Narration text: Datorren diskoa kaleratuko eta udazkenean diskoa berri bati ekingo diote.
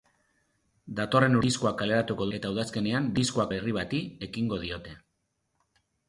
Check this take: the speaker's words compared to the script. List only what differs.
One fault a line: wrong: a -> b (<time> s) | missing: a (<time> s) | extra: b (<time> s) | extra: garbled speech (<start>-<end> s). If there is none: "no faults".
no faults